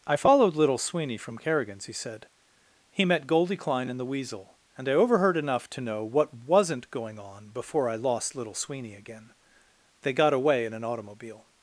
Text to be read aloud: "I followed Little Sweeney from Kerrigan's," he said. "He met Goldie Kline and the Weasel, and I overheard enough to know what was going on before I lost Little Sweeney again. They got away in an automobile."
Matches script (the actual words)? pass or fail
fail